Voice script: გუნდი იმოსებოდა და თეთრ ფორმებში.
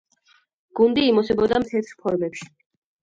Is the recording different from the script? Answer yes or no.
no